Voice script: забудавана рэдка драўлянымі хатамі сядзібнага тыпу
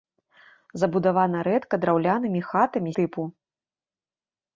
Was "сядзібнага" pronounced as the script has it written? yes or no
no